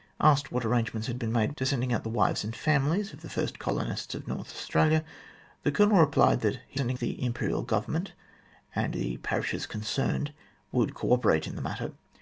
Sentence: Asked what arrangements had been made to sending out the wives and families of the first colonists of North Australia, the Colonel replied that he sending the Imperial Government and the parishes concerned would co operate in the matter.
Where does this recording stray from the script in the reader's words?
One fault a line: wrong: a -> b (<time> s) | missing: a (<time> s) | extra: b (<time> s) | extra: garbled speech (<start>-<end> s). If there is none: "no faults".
no faults